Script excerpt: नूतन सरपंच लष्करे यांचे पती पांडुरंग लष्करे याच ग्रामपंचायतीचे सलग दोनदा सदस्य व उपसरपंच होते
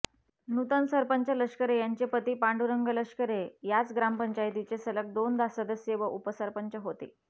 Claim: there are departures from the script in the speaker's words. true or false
false